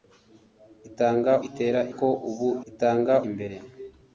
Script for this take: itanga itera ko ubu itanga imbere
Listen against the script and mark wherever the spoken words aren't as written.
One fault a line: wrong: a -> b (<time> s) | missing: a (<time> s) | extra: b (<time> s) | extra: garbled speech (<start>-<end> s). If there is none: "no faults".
no faults